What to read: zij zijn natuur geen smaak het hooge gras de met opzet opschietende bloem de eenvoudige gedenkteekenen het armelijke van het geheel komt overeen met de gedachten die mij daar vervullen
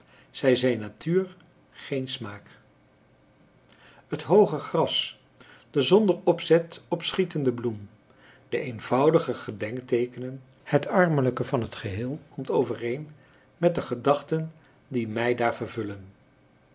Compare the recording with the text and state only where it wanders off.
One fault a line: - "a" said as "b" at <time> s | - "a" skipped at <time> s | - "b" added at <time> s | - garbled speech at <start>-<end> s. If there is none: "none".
- "met" said as "zonder" at 5.8 s